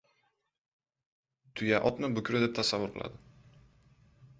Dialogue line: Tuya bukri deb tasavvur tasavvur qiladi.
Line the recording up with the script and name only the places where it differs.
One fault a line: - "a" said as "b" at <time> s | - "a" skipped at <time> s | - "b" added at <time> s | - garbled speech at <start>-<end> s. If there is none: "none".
- "otni" added at 1.9 s
- "tasavvur" skipped at 2.9 s